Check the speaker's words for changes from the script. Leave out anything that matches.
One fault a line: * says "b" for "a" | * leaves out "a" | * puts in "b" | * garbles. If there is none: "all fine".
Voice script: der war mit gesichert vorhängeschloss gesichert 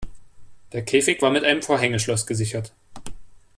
* puts in "käfig"
* says "einem" for "gesichert"